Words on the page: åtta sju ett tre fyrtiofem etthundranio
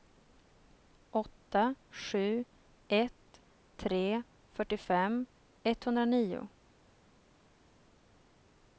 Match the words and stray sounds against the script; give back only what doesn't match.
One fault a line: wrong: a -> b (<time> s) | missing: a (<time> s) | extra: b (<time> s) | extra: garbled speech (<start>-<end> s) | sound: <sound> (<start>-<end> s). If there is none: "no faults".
no faults